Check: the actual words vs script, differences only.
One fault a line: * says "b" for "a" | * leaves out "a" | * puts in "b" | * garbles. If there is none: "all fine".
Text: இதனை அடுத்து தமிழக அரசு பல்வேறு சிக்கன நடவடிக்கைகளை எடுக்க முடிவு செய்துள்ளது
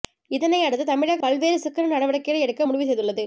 * leaves out "அரசு"